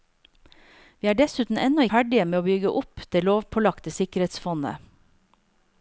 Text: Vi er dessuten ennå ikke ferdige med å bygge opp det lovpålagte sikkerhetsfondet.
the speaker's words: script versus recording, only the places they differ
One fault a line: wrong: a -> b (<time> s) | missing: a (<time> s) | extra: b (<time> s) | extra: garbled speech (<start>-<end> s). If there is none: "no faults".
missing: ikke (1.9 s)